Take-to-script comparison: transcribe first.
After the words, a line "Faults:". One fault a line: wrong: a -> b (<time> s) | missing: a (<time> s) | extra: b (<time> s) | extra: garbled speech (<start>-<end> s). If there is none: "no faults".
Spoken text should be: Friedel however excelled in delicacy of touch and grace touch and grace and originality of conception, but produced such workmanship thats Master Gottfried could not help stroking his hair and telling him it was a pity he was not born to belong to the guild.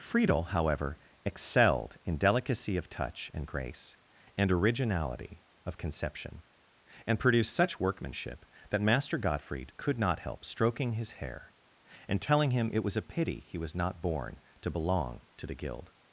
Friedel however excelled in delicacy of touch and grace and originality of conception, and produced such workmanship that Master Gottfried could not help stroking his hair and telling him it was a pity he was not born to belong to the guild.
Faults:
missing: touch (4.0 s)
missing: grace and (4.5 s)
wrong: but -> and (7.0 s)
wrong: thats -> that (8.7 s)